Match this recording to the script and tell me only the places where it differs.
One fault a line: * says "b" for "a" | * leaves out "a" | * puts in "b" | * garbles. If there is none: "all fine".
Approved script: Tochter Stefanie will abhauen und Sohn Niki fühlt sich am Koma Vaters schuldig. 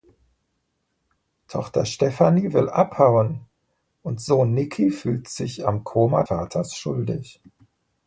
all fine